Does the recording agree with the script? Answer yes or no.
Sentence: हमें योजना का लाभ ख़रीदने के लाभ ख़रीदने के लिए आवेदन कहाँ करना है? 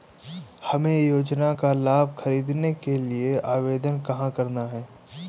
no